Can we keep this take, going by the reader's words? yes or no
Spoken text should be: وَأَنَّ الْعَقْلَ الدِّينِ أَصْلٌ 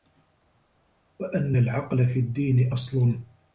no